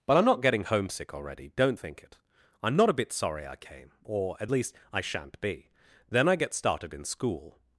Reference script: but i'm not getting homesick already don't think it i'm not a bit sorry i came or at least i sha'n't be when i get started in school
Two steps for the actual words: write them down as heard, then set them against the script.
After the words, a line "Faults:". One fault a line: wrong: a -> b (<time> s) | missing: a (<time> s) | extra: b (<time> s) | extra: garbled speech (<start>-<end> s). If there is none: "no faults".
but i'm not getting homesick already don't think it i'm not a bit sorry i came or at least i sha'n't be then i get started in school
Faults:
wrong: when -> then (6.1 s)